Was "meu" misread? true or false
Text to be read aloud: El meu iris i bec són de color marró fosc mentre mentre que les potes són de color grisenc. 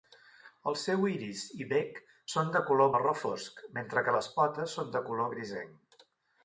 true